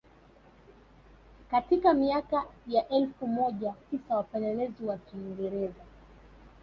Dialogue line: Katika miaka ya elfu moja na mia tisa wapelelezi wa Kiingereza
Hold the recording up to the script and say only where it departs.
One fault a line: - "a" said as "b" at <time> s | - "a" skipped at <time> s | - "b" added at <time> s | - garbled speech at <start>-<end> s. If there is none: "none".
- "na mia" skipped at 3.8 s